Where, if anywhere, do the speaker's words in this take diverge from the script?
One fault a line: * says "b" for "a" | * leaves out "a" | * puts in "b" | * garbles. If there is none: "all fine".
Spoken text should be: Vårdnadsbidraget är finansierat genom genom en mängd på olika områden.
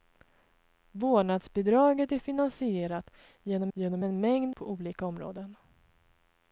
all fine